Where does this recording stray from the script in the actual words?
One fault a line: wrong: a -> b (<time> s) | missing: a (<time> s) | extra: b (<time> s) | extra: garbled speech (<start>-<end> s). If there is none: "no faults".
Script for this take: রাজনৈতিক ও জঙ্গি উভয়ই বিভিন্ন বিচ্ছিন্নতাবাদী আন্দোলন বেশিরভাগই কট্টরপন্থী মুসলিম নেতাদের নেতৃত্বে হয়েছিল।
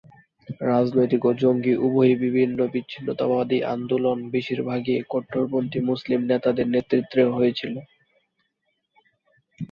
no faults